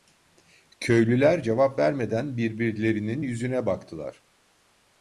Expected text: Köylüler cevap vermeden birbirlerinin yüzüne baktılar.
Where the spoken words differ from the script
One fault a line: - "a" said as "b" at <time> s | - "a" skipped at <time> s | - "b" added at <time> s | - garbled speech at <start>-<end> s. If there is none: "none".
none